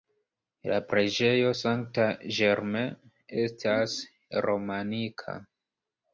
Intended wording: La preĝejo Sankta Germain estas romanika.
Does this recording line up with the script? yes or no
yes